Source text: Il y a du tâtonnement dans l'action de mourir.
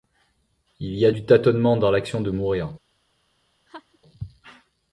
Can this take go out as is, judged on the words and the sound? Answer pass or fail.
fail